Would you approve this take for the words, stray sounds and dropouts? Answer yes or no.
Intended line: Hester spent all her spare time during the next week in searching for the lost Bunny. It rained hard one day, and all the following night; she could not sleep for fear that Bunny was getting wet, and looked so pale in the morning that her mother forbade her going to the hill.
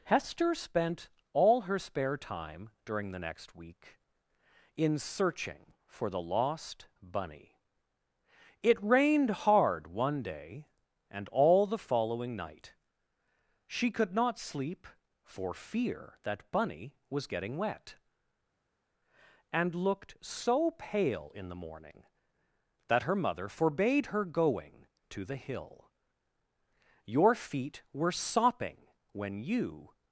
no